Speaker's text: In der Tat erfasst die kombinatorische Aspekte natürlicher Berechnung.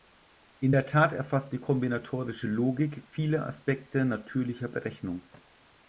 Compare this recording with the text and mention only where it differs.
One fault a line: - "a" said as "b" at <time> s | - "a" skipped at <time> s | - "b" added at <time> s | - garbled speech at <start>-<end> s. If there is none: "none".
- "Logik viele" added at 2.5 s